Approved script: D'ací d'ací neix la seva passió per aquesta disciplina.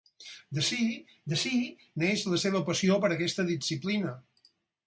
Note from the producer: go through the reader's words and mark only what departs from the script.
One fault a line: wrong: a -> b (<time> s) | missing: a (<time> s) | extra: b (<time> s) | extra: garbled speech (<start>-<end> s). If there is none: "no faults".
no faults